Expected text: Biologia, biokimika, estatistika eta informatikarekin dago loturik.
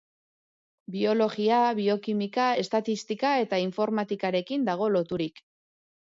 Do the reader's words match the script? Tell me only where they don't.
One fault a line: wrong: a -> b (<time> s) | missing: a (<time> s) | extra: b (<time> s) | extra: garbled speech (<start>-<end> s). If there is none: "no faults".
no faults